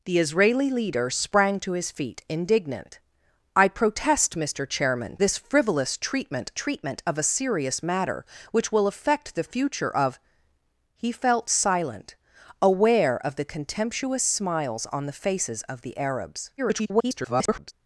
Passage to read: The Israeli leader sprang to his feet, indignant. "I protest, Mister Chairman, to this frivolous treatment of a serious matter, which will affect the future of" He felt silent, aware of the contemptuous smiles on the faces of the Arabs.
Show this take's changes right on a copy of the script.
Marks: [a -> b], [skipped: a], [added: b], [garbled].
The Israeli leader sprang to his feet, indignant. "I protest, Mister Chairman, [skipped: to] this frivolous treatment [added: treatment] of a serious matter, which will affect the future of" He felt silent, aware of the contemptuous smiles on the faces of the Arabs. [garbled]